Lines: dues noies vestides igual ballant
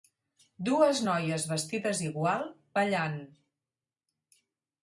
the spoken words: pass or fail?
pass